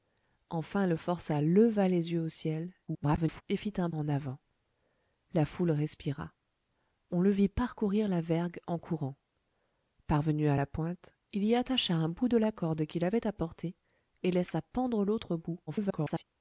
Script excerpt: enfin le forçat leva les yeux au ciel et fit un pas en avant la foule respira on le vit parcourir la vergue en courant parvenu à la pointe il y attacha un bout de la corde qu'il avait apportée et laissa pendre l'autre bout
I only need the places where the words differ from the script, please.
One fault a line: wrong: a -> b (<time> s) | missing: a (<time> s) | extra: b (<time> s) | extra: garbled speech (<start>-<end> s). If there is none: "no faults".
extra: garbled speech (2.9-3.4 s)
missing: pas (3.9 s)
extra: garbled speech (15.7-16.2 s)